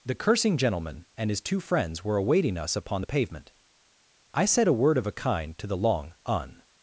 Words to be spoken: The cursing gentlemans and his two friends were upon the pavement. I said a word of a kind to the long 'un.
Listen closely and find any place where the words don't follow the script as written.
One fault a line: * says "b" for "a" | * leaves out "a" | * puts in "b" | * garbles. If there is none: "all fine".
* says "gentleman" for "gentlemans"
* puts in "awaiting us"